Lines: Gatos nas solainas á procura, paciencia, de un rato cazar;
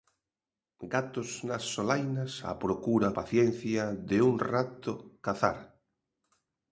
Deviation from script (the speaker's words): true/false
false